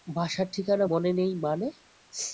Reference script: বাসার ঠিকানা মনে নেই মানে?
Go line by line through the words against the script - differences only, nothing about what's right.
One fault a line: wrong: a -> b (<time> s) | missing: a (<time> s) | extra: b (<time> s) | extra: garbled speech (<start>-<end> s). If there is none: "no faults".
no faults